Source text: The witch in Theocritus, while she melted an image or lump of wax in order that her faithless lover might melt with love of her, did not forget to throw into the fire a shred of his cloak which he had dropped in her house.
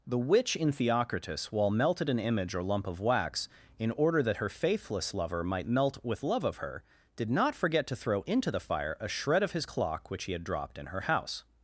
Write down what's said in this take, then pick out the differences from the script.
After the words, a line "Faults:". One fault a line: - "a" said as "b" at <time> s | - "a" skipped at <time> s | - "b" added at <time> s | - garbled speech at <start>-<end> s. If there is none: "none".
The witch in Theocritus, while melted an image or lump of wax in order that her faithless lover might melt with love of her, did not forget to throw into the fire a shred of his clock which he had dropped in her house.
Faults:
- "she" skipped at 1.7 s
- "cloak" said as "clock" at 9.6 s